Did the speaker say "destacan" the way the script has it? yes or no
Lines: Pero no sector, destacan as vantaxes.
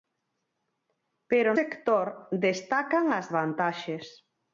yes